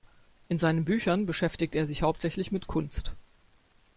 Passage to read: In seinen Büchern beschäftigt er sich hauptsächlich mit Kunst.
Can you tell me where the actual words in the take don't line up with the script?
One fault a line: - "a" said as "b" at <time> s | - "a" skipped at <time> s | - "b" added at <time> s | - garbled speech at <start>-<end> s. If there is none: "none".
none